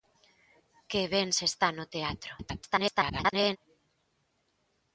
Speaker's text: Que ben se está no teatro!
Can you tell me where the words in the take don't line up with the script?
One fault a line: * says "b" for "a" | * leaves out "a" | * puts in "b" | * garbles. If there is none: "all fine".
* garbles